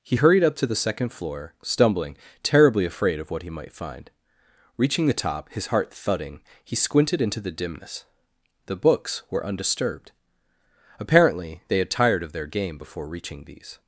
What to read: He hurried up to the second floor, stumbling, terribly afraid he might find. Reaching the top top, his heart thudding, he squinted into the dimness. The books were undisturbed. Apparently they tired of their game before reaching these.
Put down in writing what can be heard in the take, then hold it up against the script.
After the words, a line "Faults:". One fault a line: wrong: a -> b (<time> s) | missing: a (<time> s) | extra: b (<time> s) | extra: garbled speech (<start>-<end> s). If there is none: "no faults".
He hurried up to the second floor, stumbling, terribly afraid of what he might find. Reaching the top, his heart thudding, he squinted into the dimness. The books were undisturbed. Apparently they had tired of their game before reaching these.
Faults:
extra: of what (3.2 s)
missing: top (5.5 s)
extra: had (11.8 s)